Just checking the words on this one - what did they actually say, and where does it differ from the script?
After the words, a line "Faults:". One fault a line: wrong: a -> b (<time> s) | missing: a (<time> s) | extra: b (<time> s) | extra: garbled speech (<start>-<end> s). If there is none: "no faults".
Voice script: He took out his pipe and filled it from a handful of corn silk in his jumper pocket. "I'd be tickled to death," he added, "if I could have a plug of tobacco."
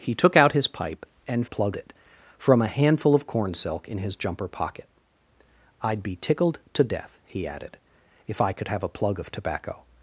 He took out his pipe and plug it from a handful of corn silk in his jumper pocket. "I'd be tickled to death," he added, "if I could have a plug of tobacco."
Faults:
wrong: filled -> plug (1.4 s)